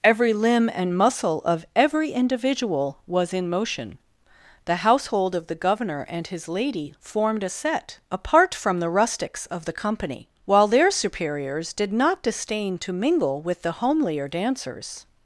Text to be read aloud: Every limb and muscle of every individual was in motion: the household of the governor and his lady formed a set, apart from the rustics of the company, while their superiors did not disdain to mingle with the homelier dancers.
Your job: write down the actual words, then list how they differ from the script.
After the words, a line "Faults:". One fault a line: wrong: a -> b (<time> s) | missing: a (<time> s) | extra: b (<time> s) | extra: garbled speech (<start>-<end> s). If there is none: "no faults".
Every limb and muscle of every individual was in motion: the household of the governor and his lady formed a set, apart from the rustics of the company, while their superiors did not disdain to mingle with the homelier dancers.
Faults:
no faults